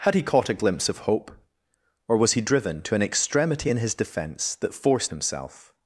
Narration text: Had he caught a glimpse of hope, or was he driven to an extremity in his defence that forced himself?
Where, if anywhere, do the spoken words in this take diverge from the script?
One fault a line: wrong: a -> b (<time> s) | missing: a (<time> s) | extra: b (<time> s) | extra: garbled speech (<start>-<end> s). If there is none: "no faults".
no faults